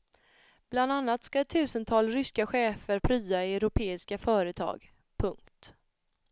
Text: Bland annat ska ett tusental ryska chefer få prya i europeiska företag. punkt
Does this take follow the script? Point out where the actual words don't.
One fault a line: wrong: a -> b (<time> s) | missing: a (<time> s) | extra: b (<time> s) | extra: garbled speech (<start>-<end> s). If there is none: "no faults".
missing: få (3.0 s)